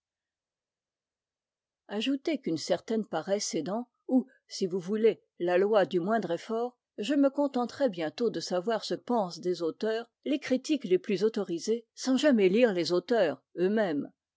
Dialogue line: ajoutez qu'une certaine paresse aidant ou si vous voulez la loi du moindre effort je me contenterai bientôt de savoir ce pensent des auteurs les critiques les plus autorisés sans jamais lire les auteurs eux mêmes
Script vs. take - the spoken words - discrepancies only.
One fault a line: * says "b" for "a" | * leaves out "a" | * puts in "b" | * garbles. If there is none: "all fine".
all fine